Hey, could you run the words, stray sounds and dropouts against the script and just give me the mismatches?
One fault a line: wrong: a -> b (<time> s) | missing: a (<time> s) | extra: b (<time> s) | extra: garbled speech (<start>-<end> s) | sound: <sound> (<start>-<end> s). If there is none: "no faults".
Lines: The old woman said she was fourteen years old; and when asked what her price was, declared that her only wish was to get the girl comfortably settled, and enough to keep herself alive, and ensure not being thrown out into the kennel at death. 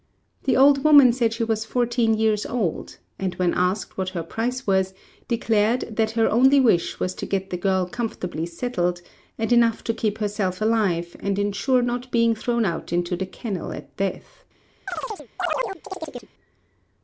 sound: chirp (14.9-16.3 s)